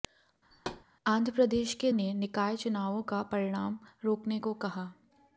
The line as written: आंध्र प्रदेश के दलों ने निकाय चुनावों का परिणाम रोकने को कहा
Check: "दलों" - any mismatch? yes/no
yes